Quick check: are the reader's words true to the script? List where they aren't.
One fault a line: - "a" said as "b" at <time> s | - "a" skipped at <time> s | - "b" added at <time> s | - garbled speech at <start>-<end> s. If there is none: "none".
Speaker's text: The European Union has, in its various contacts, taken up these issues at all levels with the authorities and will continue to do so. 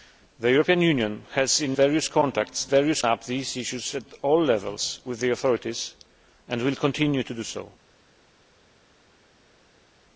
- "its" skipped at 1.8 s
- "taken" said as "various" at 2.7 s